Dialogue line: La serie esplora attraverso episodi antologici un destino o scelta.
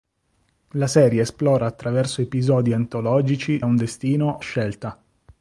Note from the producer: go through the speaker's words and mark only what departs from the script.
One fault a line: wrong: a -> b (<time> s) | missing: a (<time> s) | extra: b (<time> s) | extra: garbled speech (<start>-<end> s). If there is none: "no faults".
no faults